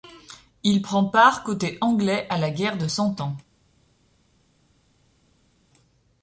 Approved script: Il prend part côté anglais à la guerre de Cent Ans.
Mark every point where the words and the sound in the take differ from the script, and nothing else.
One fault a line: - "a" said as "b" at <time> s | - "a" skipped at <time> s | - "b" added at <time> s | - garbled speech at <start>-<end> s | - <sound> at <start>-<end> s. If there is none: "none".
none